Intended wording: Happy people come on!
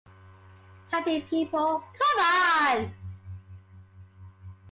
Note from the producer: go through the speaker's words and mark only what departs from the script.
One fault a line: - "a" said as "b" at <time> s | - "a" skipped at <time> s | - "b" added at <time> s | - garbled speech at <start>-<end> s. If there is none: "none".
none